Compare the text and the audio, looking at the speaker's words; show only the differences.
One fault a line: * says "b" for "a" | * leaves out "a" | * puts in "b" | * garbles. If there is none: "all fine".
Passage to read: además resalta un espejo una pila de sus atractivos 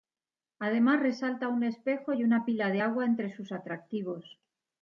* puts in "y"
* puts in "agua entre"